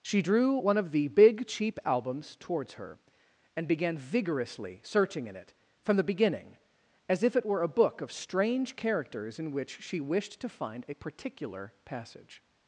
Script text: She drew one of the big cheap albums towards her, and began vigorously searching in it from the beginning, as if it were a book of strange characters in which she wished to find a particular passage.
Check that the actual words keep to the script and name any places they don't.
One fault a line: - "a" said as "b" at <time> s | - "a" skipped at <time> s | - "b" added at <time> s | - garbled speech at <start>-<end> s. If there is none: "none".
none